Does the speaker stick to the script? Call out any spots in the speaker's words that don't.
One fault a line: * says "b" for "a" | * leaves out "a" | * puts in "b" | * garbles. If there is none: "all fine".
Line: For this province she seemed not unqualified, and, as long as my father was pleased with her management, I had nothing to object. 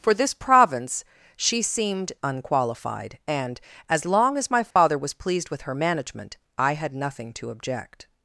* leaves out "not"